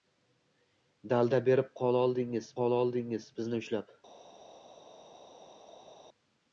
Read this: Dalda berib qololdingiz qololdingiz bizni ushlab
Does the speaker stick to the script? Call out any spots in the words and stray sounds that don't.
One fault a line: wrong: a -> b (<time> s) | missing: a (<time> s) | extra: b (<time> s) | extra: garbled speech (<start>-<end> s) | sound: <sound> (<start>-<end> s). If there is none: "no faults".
no faults